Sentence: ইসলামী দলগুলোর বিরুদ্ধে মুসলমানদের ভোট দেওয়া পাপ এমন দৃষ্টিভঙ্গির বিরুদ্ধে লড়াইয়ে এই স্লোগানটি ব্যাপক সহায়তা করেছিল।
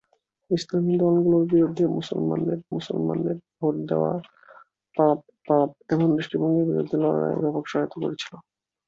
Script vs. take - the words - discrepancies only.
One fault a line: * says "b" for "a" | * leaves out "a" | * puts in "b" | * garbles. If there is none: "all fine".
* puts in "মুসলমানদের"
* puts in "পাপ"
* leaves out "এই স্লোগানটি"